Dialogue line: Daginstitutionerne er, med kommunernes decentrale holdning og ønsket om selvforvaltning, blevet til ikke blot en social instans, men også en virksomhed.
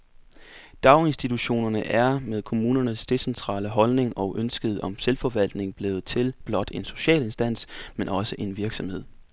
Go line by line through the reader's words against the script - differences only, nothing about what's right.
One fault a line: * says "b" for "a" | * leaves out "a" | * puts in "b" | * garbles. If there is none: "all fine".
* leaves out "ikke"